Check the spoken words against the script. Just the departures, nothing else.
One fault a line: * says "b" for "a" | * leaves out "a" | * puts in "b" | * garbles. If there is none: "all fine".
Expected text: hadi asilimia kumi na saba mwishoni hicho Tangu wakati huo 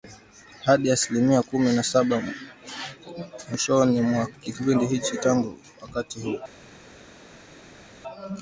* puts in "mwa kipindi"